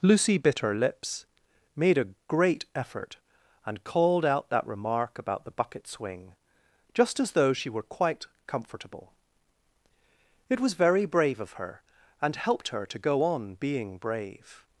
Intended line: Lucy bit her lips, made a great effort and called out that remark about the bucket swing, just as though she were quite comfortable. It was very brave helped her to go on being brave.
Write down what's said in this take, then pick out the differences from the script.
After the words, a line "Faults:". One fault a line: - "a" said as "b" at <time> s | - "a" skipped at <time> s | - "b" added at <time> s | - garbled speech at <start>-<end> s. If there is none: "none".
Lucy bit her lips, made a great effort and called out that remark about the bucket swing, just as though she were quite comfortable. It was very brave of her and helped her to go on being brave.
Faults:
- "of her and" added at 11.4 s